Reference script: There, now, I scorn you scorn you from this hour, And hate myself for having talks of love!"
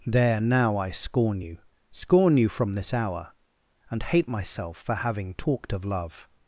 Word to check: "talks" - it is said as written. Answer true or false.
false